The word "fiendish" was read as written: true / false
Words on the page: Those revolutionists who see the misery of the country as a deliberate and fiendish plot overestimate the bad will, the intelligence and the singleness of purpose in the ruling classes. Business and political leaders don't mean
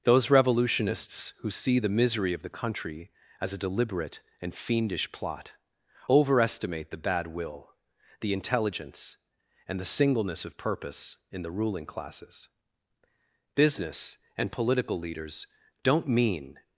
true